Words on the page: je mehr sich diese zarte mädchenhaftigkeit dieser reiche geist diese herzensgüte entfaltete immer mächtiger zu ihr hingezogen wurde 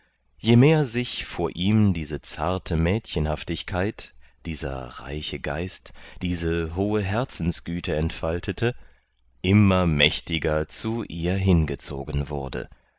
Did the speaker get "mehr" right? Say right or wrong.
right